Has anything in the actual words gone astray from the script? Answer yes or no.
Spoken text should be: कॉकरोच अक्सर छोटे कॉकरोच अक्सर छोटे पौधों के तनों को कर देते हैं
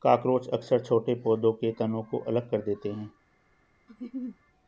yes